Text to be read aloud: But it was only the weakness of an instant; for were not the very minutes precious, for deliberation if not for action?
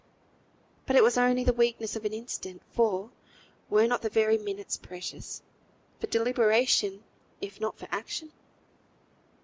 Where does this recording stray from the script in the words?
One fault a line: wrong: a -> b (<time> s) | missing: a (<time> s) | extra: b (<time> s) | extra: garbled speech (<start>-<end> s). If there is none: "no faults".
no faults